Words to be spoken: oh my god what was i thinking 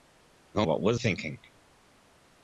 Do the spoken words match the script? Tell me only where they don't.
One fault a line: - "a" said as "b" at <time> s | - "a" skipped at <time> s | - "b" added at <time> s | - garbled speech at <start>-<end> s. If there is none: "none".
- "my god" skipped at 0.7 s
- "i" skipped at 1.0 s